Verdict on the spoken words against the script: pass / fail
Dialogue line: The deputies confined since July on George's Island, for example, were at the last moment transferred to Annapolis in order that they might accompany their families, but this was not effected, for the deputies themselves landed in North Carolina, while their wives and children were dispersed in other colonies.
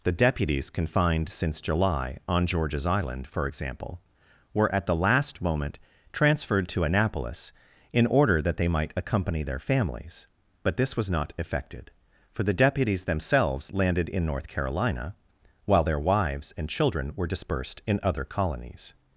pass